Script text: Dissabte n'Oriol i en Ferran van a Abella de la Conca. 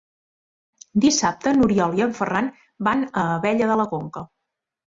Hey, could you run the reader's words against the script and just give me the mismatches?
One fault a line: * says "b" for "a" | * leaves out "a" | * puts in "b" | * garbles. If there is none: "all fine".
all fine